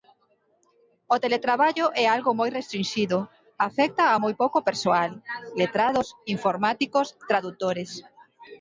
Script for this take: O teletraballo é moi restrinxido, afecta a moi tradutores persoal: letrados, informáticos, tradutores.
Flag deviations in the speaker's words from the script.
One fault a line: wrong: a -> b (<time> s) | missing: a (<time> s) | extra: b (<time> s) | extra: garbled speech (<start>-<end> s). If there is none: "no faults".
extra: algo (2.1 s)
wrong: tradutores -> pouco (4.4 s)